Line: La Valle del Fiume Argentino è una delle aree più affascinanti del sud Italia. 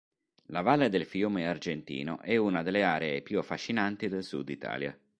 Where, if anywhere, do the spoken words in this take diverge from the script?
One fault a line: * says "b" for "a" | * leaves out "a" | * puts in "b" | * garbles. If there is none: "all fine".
all fine